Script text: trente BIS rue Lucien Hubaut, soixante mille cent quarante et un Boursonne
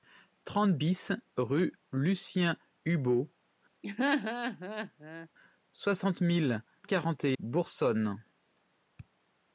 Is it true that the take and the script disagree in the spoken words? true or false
true